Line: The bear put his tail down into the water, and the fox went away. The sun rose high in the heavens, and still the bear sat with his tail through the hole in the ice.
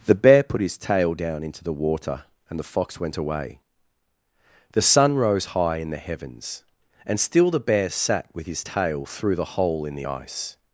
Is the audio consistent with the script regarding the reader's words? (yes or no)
yes